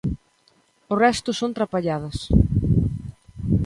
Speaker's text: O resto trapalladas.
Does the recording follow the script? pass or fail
fail